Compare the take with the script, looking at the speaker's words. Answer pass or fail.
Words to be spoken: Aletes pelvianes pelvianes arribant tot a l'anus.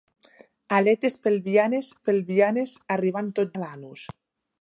pass